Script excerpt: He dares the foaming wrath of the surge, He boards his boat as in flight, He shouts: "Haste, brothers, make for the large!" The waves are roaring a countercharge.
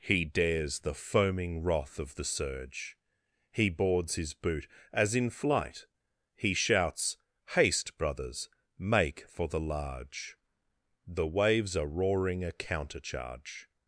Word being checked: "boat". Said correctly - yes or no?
no